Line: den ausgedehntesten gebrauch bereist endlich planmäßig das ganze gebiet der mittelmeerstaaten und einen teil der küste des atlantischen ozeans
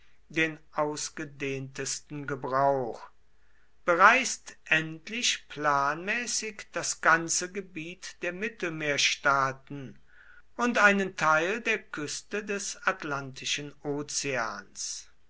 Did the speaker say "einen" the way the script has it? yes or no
yes